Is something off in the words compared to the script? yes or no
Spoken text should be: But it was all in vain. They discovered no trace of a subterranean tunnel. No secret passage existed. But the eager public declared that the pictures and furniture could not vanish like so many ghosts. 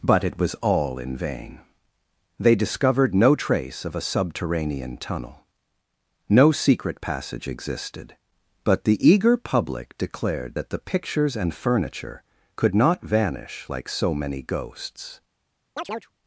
no